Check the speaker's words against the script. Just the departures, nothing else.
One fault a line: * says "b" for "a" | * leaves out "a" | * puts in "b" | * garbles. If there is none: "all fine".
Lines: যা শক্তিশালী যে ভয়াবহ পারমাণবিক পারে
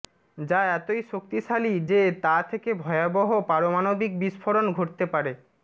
* puts in "এতই"
* puts in "তা থেকে"
* puts in "বিস্ফোরণ ঘটতে"